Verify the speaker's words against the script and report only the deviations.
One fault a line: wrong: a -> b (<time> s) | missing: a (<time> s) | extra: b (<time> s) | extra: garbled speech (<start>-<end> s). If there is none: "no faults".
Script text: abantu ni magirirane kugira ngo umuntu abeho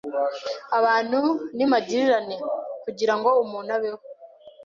no faults